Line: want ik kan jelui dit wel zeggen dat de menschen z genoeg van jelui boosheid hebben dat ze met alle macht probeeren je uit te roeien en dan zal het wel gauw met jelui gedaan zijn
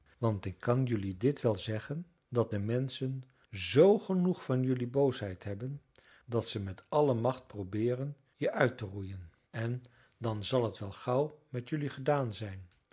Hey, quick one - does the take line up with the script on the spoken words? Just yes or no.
yes